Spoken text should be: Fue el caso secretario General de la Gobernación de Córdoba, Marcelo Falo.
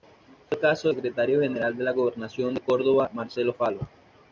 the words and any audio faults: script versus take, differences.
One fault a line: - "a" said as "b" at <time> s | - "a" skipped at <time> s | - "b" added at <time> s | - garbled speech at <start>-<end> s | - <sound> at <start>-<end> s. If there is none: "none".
none